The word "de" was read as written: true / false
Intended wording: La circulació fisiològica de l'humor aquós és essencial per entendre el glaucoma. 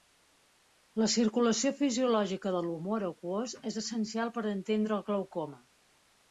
true